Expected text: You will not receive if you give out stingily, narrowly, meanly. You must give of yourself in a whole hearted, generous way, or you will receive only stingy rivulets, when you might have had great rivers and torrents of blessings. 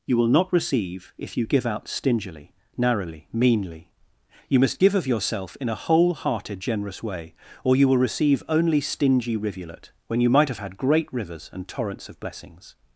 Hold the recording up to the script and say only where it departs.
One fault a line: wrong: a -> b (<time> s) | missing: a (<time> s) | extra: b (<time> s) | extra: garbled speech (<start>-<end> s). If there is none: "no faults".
wrong: rivulets -> rivulet (9.4 s)